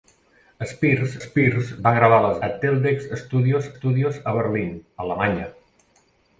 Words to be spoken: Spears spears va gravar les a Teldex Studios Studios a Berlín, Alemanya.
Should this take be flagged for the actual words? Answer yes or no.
no